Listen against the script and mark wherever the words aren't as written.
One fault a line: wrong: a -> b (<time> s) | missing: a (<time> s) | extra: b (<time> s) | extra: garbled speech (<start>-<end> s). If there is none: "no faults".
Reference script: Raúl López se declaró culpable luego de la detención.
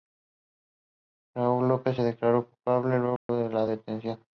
no faults